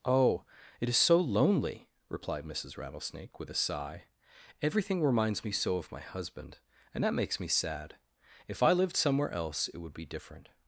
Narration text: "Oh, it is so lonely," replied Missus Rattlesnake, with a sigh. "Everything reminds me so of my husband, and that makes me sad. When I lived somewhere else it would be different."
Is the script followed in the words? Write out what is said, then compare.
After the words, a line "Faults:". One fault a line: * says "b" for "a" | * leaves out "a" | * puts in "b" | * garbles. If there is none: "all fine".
"Oh, it is so lonely," replied Missus Rattlesnake, with a sigh. "Everything reminds me so of my husband, and that makes me sad. If I lived somewhere else it would be different."
Faults:
* says "If" for "When"